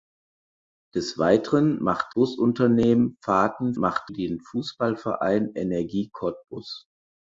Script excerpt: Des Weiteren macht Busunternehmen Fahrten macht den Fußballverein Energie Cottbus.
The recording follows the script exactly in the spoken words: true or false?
true